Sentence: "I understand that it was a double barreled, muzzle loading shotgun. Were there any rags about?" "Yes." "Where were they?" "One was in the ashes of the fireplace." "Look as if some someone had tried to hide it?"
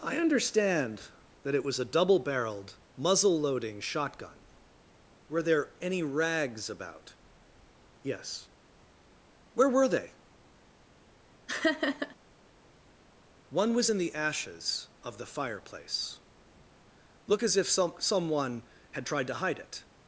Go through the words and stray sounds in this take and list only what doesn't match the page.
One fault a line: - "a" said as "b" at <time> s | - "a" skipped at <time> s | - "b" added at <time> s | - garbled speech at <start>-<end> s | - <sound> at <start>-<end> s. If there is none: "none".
- laugh at 11.5-12.2 s